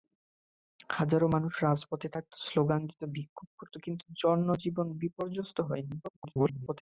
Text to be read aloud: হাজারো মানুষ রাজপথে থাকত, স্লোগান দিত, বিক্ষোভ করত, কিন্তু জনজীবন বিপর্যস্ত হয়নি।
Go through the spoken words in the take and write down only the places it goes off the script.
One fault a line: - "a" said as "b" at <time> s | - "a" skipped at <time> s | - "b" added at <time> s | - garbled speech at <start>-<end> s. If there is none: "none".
- garbled speech at 6.0-6.8 s